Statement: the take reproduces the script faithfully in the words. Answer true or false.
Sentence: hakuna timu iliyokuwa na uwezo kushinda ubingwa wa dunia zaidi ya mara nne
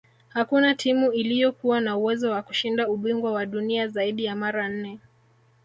false